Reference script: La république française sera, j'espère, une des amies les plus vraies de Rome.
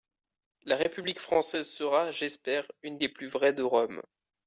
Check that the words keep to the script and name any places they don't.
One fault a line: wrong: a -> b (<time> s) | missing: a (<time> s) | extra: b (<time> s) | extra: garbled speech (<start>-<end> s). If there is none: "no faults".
missing: des amies (3.0 s)